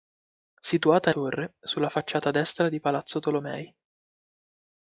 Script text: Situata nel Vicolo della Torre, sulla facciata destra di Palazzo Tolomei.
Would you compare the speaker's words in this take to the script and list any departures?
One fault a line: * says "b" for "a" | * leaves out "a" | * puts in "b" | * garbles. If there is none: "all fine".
* leaves out "nel Vicolo della"